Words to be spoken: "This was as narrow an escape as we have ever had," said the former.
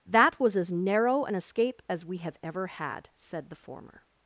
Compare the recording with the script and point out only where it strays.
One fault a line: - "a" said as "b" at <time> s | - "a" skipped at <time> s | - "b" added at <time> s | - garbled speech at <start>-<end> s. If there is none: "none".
- "This" said as "That" at 0.1 s